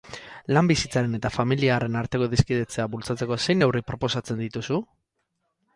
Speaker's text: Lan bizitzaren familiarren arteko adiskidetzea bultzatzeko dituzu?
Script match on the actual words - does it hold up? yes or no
no